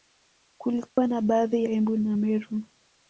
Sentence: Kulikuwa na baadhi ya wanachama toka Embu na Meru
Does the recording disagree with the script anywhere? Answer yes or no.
yes